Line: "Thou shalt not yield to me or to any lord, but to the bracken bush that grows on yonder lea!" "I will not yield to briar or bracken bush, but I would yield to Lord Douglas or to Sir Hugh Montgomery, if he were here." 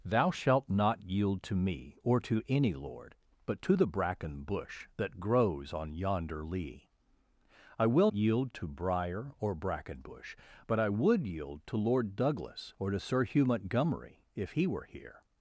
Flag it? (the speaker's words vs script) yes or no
yes